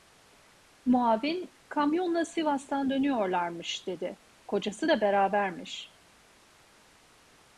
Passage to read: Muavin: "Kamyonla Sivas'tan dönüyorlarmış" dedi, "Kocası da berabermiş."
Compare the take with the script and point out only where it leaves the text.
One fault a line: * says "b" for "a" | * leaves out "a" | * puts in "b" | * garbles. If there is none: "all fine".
all fine